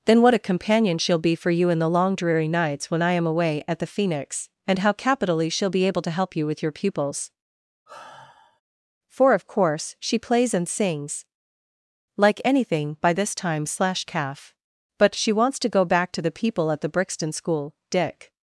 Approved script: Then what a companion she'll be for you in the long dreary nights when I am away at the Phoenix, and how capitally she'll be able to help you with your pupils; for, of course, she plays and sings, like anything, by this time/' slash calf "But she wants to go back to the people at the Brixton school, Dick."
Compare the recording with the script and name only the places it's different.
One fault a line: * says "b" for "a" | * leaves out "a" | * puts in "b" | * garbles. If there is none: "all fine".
all fine